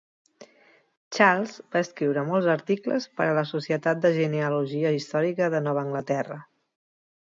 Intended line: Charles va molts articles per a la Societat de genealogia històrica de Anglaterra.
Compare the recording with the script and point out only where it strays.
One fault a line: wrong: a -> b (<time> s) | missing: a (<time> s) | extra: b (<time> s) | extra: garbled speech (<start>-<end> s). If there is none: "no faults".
extra: escriure (1.9 s)
extra: Nova (5.7 s)